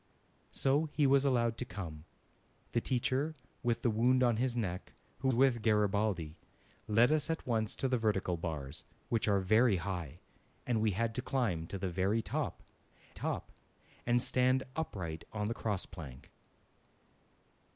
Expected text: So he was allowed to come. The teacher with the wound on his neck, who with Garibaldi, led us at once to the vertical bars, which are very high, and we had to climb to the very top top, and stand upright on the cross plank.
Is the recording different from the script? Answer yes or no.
no